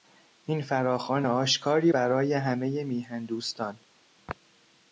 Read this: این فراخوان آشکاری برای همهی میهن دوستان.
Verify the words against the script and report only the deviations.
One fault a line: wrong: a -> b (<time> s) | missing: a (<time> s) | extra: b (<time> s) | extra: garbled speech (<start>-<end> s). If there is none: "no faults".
no faults